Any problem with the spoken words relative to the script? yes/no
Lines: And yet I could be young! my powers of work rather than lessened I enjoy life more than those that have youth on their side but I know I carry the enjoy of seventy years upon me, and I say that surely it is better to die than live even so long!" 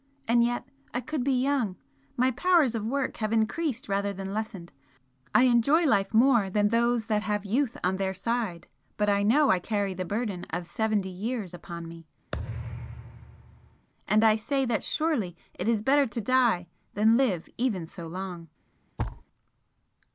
yes